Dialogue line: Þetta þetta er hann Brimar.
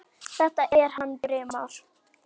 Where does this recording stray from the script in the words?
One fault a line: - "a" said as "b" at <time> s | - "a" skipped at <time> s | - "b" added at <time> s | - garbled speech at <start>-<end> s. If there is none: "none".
- "þetta" skipped at 0.7 s